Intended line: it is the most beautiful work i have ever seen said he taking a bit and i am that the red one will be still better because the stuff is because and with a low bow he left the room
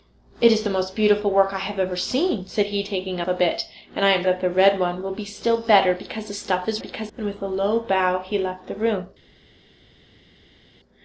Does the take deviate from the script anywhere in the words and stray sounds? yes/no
no